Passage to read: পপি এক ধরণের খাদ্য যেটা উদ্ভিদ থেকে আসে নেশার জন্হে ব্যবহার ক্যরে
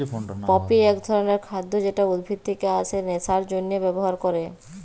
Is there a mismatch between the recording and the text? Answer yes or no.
no